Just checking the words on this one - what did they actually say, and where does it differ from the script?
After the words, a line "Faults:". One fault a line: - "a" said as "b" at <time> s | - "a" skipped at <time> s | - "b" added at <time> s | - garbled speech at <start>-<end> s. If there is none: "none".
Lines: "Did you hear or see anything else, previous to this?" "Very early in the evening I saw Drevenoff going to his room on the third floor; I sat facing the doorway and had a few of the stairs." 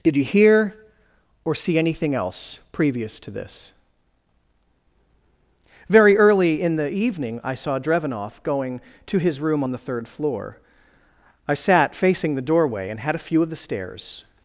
"Did you hear or see anything else, previous to this?" "Very early in the evening I saw Drevenoff going to his room on the third floor; I sat facing the doorway and had a few of the stairs."
Faults:
none